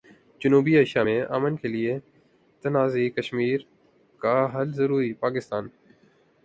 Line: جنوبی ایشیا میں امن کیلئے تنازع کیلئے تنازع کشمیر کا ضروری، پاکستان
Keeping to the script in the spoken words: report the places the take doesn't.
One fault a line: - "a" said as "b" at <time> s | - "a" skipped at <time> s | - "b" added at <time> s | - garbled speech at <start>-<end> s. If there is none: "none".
- "کیلئے تنازع" skipped at 3.1 s
- "حل" added at 4.5 s